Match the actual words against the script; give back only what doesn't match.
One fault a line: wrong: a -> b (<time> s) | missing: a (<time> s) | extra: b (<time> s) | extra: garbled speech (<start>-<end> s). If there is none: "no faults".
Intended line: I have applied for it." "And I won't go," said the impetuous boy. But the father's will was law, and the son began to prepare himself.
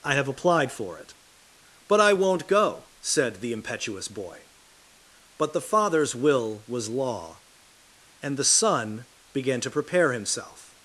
wrong: And -> But (1.9 s)